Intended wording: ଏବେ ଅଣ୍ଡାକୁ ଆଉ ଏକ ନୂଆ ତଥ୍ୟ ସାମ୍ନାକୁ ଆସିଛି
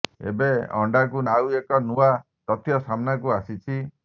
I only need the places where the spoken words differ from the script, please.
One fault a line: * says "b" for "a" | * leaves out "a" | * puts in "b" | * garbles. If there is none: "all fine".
all fine